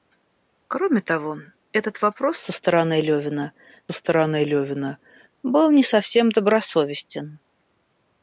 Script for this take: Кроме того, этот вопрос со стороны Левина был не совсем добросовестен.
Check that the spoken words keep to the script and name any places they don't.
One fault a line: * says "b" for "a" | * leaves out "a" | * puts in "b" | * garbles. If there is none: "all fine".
* puts in "стороны Левина"